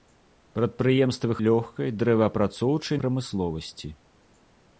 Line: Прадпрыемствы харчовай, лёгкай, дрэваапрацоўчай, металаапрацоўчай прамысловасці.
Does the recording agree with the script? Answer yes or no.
no